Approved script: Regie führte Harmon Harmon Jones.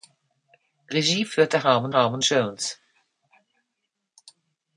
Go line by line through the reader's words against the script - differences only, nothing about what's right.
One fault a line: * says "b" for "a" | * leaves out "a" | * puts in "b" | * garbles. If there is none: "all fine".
all fine